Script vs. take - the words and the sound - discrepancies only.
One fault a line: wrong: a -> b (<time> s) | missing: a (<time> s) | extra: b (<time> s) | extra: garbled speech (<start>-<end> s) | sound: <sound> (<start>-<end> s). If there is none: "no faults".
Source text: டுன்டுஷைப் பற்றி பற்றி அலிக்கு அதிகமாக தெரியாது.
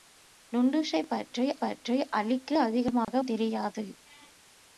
sound: dropout (3.0-3.1 s)